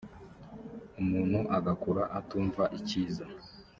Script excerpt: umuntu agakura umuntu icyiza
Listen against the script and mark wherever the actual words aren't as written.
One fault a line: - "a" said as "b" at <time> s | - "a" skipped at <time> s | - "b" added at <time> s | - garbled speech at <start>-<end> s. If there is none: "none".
- "umuntu" said as "atumva" at 2.2 s